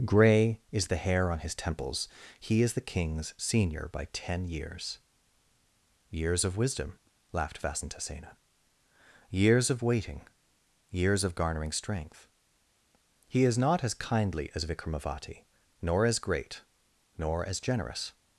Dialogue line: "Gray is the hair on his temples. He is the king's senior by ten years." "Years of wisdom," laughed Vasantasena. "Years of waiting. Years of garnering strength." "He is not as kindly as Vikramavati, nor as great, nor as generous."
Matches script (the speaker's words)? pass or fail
pass